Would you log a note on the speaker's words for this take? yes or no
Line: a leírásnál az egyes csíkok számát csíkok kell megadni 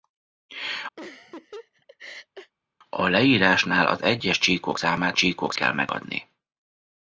no